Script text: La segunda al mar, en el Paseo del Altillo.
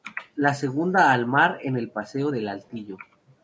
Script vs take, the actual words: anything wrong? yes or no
no